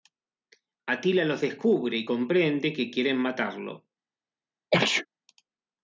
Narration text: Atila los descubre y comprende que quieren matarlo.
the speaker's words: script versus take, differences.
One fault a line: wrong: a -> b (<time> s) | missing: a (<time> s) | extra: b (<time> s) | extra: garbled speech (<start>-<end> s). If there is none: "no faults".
no faults